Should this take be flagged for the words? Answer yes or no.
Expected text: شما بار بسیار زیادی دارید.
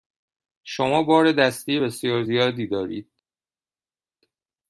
yes